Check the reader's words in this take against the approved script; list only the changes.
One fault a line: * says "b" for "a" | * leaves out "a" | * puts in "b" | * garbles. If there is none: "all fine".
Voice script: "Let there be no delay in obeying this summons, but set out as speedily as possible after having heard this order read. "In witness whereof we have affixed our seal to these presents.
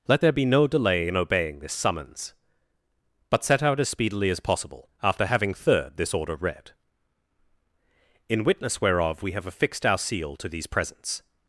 * says "third" for "heard"